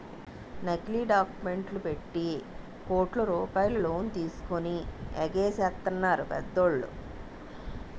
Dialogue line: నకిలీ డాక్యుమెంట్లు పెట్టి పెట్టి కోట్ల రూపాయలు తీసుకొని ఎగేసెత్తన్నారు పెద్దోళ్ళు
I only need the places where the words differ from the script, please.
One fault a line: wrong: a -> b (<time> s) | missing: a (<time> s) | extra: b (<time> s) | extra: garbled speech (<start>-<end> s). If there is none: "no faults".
missing: పెట్టి (2.2 s)
extra: లోన్ (3.8 s)